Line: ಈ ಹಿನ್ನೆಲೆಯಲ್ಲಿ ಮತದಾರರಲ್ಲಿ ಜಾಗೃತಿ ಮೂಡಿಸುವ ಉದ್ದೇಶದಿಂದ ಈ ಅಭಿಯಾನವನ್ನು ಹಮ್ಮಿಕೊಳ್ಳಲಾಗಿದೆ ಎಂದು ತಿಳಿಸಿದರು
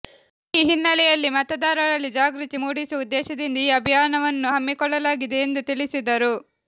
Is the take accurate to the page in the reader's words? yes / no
yes